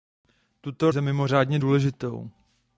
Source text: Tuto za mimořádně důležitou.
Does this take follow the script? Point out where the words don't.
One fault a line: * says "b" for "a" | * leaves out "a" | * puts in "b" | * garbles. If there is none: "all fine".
all fine